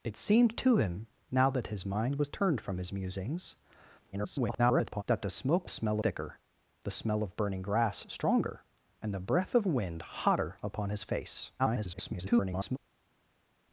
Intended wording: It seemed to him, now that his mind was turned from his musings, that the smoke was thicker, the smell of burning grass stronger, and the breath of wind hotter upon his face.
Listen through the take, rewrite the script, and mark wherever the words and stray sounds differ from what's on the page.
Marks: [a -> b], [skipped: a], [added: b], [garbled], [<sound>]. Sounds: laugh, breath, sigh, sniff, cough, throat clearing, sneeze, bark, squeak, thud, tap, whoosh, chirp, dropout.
It seemed to him, now that his mind was turned from his musings, [garbled] that the smoke [was -> smell] thicker, the smell of burning grass stronger, and the breath of wind hotter upon his face. [garbled]